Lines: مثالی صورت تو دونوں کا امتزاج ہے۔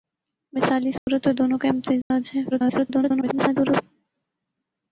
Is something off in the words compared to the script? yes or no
yes